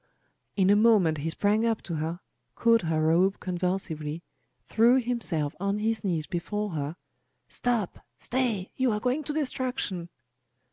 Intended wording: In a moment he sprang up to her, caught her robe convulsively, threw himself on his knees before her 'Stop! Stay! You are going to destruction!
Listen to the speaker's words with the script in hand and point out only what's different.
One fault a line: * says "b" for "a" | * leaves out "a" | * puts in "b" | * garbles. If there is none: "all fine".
all fine